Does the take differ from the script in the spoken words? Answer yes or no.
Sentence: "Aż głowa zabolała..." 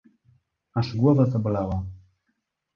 no